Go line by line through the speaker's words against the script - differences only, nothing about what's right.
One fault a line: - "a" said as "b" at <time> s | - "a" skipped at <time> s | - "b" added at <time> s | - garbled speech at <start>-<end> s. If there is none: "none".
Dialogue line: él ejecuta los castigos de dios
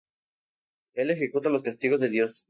none